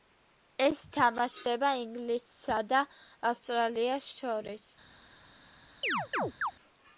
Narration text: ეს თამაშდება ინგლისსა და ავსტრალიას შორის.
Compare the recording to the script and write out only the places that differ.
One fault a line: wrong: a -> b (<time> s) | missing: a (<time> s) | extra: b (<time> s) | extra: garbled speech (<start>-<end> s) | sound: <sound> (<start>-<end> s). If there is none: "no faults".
sound: chirp (5.8-6.5 s)